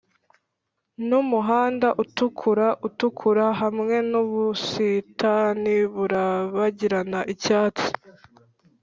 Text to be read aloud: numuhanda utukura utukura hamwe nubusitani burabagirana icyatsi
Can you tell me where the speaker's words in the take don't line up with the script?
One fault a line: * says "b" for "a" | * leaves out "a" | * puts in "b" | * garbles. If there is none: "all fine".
all fine